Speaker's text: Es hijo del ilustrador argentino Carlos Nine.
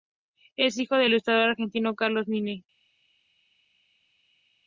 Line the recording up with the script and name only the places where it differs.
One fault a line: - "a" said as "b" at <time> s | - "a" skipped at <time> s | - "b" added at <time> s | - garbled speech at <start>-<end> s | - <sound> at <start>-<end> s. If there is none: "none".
none